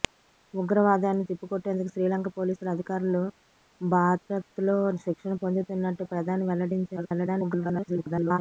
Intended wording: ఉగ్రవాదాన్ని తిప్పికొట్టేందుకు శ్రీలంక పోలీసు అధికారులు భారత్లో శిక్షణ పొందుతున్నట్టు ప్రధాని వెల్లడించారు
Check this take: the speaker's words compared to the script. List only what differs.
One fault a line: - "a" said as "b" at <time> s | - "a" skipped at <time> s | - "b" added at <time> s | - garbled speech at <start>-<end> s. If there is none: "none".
- garbled speech at 7.0-8.4 s